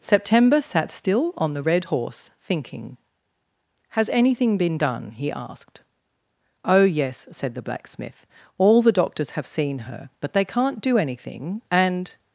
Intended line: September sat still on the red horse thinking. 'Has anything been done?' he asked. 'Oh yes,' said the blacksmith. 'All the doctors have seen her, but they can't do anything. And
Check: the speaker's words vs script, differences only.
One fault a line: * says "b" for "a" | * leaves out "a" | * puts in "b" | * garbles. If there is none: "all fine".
all fine